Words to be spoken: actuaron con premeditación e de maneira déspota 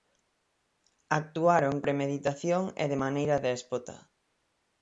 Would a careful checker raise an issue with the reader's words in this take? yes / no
yes